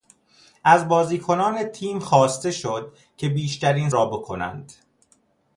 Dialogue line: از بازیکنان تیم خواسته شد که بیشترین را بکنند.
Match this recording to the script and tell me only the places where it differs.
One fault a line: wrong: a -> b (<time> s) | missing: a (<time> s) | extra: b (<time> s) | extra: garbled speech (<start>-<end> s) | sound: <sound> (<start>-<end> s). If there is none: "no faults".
no faults